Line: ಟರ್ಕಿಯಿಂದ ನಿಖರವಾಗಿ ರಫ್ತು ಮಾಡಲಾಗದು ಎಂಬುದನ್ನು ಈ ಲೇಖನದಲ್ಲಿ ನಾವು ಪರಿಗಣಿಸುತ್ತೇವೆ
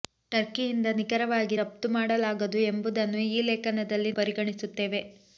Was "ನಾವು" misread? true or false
true